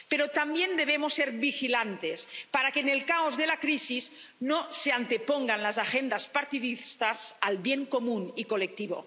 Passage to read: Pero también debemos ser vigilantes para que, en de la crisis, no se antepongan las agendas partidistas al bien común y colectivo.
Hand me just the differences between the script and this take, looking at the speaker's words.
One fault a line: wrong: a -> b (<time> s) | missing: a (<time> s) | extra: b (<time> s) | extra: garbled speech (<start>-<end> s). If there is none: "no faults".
extra: el caos (2.9 s)